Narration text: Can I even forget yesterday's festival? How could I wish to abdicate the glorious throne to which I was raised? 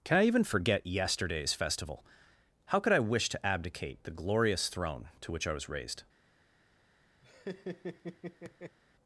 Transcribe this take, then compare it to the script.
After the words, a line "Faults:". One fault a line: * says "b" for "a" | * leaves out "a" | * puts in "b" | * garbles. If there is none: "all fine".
Can I even forget yesterday's festival? How could I wish to abdicate the glorious throne to which I was raised?
Faults:
all fine